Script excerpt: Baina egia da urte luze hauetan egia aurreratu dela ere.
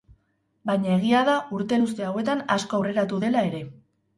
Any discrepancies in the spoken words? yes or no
yes